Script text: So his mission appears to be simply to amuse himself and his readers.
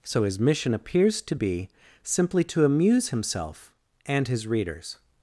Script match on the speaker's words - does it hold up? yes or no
yes